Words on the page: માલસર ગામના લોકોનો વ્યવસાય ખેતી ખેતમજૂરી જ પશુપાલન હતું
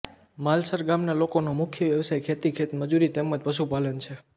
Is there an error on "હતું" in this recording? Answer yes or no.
yes